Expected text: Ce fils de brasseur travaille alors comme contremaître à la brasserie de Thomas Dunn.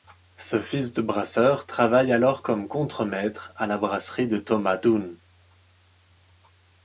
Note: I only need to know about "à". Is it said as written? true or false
true